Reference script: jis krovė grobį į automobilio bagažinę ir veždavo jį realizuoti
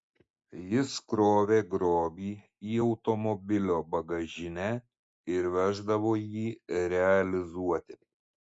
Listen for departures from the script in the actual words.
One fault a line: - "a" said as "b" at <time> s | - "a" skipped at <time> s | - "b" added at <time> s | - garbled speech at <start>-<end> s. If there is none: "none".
none